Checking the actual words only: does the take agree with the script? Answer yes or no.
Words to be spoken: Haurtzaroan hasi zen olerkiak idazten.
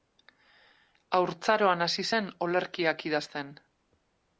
yes